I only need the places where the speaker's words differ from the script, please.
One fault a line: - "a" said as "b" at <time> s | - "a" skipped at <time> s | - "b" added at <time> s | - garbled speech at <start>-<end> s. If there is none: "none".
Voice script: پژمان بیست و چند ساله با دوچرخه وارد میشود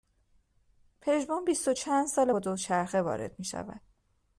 none